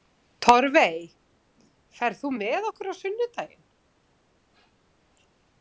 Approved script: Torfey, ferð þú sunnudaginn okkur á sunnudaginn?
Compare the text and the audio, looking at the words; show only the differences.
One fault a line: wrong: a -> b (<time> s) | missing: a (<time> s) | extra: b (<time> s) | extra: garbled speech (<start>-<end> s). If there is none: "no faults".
wrong: sunnudaginn -> með (2.4 s)